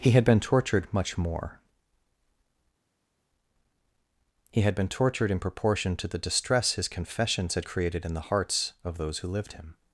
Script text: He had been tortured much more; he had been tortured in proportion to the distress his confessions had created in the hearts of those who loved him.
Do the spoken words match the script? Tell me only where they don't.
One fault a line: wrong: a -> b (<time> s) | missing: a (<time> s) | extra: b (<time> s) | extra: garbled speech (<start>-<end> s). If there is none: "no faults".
wrong: loved -> lived (9.3 s)